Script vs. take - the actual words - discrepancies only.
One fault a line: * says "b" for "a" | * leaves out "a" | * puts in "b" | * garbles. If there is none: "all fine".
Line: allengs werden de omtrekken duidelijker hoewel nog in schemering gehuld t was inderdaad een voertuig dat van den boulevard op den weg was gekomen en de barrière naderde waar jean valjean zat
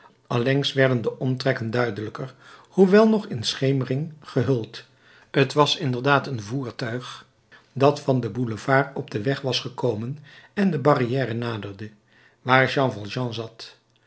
all fine